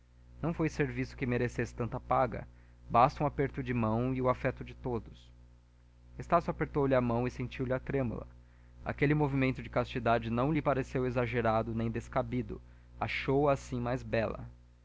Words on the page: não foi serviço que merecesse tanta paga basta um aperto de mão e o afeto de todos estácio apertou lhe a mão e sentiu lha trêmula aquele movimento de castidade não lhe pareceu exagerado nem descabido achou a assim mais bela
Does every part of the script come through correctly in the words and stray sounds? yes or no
yes